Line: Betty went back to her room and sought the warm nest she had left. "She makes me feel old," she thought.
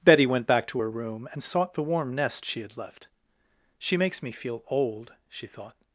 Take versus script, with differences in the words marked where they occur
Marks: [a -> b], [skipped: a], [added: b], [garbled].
Betty went back to her room and sought the warm nest she had left. "She makes me feel old," she thought.